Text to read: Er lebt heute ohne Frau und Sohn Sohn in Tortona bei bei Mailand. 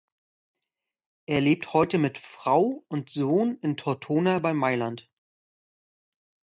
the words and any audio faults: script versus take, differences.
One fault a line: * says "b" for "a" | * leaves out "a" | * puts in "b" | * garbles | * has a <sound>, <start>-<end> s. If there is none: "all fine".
* says "mit" for "ohne"
* leaves out "Sohn"
* leaves out "bei"